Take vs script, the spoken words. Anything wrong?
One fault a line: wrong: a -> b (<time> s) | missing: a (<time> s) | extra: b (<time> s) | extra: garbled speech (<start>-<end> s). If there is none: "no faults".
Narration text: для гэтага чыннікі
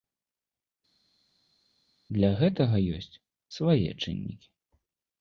extra: ёсць свае (3.0 s)